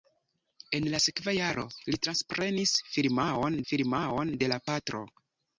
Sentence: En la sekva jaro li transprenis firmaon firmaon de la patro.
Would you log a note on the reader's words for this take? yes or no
no